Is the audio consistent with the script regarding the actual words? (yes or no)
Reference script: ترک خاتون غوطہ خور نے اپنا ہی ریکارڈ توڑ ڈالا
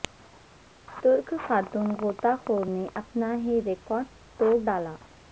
yes